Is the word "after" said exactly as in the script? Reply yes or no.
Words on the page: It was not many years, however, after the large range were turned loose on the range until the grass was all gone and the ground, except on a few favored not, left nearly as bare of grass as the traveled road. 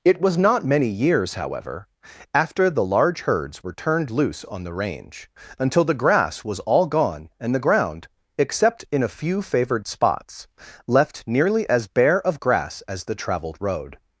yes